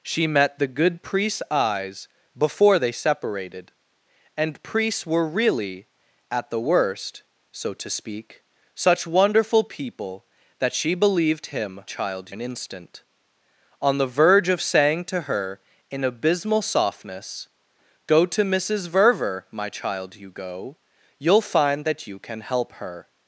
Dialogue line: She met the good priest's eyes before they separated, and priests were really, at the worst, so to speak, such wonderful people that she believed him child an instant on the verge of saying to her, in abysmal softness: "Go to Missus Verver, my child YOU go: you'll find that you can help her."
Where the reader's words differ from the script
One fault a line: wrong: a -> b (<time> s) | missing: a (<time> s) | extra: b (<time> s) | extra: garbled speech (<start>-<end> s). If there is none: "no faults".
no faults